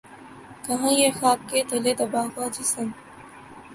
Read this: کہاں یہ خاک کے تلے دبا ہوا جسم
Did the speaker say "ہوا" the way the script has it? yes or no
yes